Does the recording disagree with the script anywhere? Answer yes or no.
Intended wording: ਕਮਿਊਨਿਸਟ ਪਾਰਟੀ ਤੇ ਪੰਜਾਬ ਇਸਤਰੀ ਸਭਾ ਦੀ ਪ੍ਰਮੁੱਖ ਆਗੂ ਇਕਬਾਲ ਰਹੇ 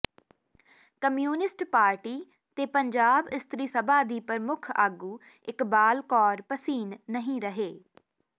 yes